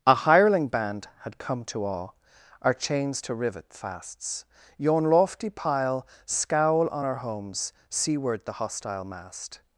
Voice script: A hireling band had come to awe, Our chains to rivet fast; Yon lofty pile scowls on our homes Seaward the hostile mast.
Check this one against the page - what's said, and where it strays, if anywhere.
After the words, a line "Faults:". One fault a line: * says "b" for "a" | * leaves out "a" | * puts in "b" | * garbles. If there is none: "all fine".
A hireling band had come to awe, Our chains to rivet fasts; Yon lofty pile scowl on our homes Seaward the hostile mast.
Faults:
* says "fasts" for "fast"
* says "scowl" for "scowls"